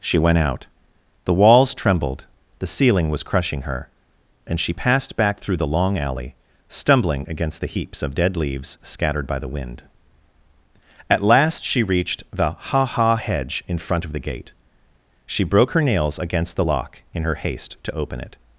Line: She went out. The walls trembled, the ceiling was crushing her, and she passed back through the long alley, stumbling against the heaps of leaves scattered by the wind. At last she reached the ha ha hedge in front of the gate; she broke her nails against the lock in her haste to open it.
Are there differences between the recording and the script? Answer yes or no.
yes